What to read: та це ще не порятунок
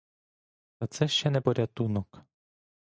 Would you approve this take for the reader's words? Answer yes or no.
yes